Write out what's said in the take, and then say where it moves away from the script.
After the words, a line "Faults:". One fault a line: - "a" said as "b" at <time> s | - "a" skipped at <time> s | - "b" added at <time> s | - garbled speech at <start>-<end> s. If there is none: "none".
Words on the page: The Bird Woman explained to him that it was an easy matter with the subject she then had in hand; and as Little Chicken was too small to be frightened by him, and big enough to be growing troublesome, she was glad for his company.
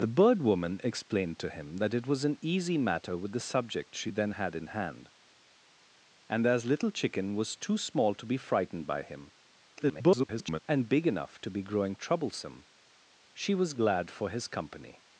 The Bird Woman explained to him that it was an easy matter with the subject she then had in hand; and as Little Chicken was too small to be frightened by him, [garbled] and big enough to be growing troublesome, she was glad for his company.
Faults:
- garbled speech at 9.8-10.6 s